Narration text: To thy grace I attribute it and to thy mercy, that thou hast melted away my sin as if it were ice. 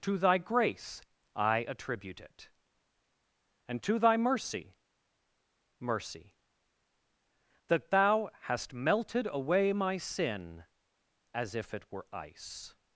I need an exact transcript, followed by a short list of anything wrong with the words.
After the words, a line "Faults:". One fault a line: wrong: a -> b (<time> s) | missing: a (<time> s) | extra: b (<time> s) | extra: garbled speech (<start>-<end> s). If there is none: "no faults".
To thy grace I attribute it and to thy mercy mercy, that thou hast melted away my sin as if it were ice.
Faults:
extra: mercy (5.8 s)